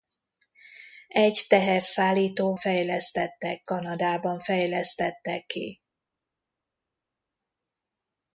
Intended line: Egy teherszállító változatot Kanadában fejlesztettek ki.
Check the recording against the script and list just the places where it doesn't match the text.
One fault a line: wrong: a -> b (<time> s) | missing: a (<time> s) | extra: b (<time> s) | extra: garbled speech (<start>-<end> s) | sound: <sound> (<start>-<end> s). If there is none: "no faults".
wrong: változatot -> fejlesztettek (2.6 s)